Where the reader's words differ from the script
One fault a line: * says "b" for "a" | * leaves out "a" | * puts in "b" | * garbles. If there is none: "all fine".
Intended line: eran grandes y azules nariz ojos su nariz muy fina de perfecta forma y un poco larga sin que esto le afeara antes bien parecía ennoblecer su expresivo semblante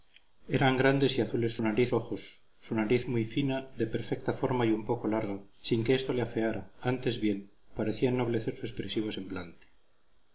all fine